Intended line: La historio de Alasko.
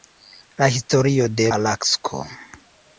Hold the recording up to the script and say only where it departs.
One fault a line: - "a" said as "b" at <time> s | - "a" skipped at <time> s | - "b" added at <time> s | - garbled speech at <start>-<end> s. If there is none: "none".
none